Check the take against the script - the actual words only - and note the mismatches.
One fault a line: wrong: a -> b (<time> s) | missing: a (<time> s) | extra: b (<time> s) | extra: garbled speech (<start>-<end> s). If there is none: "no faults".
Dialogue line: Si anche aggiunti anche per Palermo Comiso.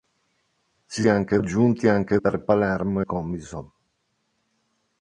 no faults